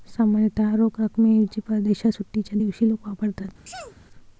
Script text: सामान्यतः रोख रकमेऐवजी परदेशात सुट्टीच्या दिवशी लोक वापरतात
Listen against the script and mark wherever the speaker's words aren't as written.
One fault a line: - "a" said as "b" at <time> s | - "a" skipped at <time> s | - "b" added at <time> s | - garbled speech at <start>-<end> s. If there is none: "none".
none